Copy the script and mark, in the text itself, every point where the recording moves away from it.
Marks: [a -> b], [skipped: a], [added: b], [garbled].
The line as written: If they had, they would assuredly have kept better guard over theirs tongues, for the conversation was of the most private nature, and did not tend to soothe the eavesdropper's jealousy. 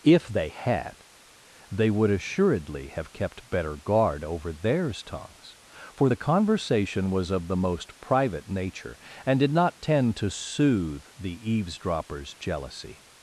If they had, they would assuredly have kept better guard over theirs tongues, for the conversation was of the most private nature, and did not tend to soothe the eavesdropper's jealousy.